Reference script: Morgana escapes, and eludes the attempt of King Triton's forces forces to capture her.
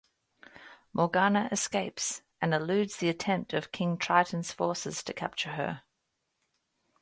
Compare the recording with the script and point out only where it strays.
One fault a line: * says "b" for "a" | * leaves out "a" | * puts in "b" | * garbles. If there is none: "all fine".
* leaves out "forces"